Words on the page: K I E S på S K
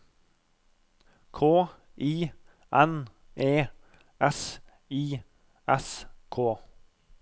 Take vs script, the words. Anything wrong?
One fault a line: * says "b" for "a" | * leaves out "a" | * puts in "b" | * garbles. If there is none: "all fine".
* puts in "N"
* says "I" for "på"